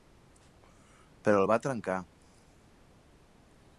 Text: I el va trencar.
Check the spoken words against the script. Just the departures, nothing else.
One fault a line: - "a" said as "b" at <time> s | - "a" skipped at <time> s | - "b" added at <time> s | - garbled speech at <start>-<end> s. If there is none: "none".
- "I" said as "Però" at 1.3 s